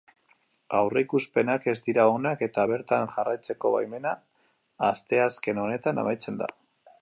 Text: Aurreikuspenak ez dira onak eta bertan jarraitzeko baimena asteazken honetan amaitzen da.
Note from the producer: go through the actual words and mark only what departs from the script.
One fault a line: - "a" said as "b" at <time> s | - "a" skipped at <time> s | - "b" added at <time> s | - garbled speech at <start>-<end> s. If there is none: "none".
none